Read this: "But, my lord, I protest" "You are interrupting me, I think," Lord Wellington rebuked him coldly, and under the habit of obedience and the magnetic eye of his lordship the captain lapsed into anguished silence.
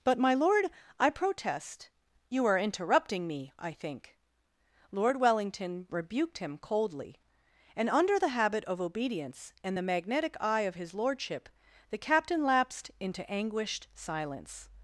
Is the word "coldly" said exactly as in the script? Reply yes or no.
yes